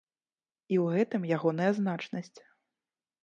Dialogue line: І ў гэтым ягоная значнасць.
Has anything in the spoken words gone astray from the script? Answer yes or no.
no